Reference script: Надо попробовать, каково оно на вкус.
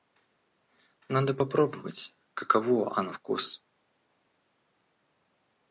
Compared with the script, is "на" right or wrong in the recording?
wrong